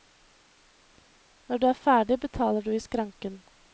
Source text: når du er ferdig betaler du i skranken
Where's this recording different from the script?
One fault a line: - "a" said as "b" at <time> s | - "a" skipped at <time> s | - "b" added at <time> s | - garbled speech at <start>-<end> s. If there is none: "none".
none